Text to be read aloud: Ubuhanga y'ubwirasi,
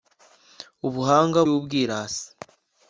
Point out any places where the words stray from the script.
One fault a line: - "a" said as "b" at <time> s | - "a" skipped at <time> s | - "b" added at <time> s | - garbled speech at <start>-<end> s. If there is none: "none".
none